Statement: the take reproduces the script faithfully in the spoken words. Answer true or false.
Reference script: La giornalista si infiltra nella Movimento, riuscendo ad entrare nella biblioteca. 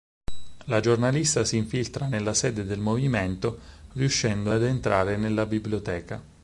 false